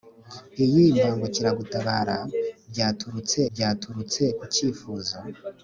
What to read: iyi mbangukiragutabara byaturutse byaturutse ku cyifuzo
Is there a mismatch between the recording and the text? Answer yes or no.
no